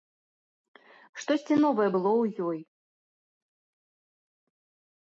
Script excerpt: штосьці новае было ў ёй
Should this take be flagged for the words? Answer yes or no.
no